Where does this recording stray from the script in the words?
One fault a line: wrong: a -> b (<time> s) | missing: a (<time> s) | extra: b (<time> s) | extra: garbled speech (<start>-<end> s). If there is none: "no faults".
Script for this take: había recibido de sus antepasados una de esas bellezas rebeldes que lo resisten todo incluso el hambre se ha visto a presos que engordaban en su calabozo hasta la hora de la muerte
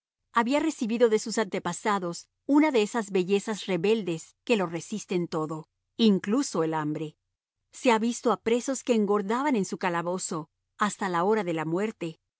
no faults